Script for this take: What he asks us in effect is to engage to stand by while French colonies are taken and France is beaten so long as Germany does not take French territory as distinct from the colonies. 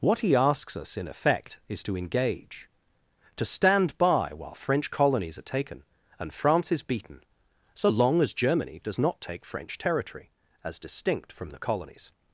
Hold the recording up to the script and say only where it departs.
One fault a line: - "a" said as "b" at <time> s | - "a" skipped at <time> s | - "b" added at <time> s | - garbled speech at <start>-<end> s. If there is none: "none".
none